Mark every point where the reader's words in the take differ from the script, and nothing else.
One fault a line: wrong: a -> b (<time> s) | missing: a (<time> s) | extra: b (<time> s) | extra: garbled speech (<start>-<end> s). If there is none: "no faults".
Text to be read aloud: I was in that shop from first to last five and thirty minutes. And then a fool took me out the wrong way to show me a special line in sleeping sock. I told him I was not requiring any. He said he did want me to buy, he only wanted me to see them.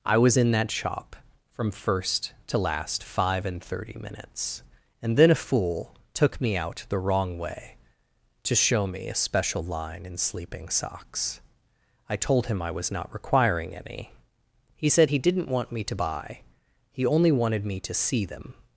wrong: sock -> socks (10.7 s)
wrong: did -> didn't (15.2 s)